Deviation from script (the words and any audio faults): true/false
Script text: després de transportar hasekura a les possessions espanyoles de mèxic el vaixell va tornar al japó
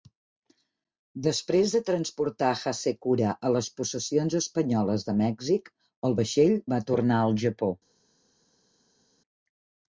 false